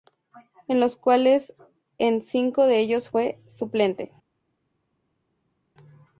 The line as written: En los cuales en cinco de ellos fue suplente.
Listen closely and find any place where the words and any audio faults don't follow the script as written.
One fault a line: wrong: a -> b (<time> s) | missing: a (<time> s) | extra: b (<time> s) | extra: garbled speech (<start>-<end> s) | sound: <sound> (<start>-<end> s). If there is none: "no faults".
no faults